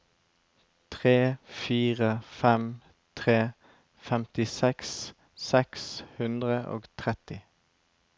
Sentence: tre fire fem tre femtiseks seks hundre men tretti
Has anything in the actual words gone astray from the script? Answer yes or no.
yes